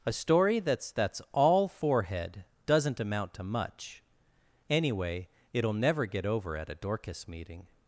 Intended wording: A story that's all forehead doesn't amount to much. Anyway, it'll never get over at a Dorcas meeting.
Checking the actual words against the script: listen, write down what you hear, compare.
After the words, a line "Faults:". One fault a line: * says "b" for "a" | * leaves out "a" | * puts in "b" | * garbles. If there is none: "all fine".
A story that's that's all forehead doesn't amount to much. Anyway, it'll never get over at a Dorcas meeting.
Faults:
* puts in "that's"